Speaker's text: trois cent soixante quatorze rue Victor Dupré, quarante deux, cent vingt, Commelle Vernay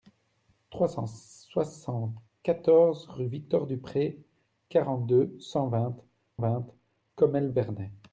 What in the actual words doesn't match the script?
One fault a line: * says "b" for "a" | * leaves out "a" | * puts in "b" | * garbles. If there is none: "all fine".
* puts in "vingt"